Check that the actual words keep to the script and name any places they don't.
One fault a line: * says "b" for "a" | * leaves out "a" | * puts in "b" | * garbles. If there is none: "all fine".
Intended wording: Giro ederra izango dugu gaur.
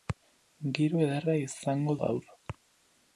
* leaves out "dugu"